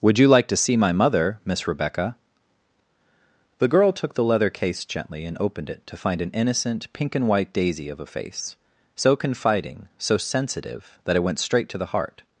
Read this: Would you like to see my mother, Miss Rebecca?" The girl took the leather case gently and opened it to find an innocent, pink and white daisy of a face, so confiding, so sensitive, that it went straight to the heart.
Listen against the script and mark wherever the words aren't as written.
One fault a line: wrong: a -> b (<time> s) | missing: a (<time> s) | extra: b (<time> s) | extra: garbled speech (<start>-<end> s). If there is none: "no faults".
no faults